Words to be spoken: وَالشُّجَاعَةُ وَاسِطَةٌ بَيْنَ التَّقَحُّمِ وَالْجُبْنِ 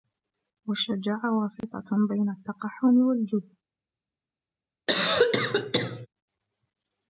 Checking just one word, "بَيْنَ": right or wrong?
right